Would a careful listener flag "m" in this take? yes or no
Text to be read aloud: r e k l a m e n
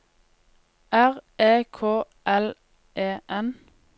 yes